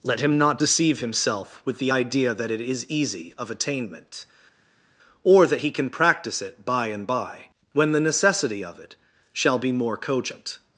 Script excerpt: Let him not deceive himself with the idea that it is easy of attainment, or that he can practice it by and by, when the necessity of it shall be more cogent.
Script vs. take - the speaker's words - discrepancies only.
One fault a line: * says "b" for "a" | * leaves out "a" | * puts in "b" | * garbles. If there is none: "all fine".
all fine